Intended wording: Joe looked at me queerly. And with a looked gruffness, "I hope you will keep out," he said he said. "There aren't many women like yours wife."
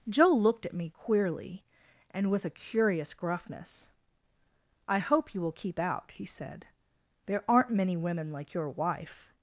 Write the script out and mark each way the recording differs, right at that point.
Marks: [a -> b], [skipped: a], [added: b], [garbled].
Joe looked at me queerly. And with a [looked -> curious] gruffness, "I hope you will keep out," he said [skipped: he said.] "There aren't many women like [yours -> your] wife."